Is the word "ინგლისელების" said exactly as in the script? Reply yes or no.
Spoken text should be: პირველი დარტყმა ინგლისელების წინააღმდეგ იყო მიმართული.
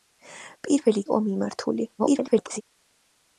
no